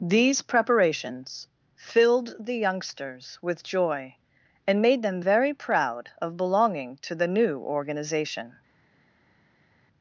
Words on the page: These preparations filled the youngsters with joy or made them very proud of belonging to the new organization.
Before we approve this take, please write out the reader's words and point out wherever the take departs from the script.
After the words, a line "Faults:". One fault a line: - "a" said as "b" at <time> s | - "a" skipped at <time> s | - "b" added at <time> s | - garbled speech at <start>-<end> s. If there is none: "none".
These preparations filled the youngsters with joy and made them very proud of belonging to the new organization.
Faults:
- "or" said as "and" at 4.7 s